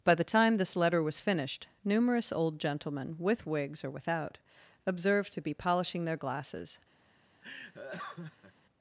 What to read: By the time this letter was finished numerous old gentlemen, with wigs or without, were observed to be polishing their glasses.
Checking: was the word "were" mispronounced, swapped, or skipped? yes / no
yes